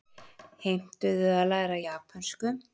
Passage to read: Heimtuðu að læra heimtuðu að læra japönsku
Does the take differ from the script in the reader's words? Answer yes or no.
yes